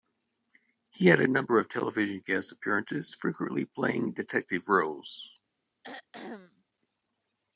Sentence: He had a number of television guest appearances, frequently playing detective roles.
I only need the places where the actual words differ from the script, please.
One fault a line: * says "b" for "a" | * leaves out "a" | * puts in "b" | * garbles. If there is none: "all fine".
all fine